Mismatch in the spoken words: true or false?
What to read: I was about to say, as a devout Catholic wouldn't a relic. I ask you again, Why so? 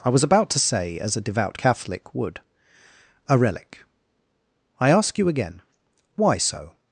true